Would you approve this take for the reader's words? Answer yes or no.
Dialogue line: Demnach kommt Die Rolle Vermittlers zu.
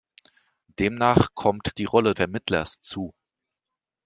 yes